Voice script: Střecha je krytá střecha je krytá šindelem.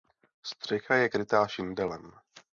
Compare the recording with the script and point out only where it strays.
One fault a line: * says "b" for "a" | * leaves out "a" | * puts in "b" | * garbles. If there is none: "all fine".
* leaves out "střecha je krytá"